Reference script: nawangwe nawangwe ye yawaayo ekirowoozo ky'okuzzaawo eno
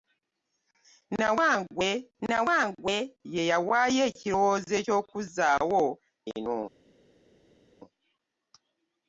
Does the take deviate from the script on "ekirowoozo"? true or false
false